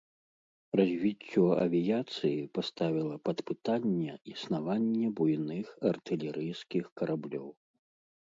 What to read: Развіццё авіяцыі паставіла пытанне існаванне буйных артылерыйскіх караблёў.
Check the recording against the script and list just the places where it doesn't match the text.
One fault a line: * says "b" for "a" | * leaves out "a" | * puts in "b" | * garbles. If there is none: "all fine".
* puts in "пад"